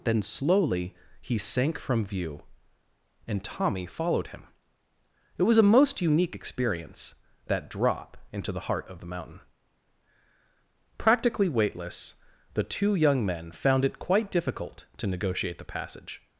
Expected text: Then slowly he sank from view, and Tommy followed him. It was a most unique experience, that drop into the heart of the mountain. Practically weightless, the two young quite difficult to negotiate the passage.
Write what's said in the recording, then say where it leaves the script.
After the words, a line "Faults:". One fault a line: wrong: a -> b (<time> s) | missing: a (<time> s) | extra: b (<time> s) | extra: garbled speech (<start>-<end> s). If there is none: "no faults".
Then slowly he sank from view, and Tommy followed him. It was a most unique experience, that drop into the heart of the mountain. Practically weightless, the two young men found it quite difficult to negotiate the passage.
Faults:
extra: men found it (13.2 s)